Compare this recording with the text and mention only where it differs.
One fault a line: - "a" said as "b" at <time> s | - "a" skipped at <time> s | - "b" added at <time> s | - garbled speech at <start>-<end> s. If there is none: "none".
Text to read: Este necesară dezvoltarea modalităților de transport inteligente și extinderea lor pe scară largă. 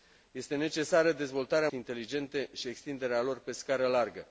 - "modalităților de transport" skipped at 1.7 s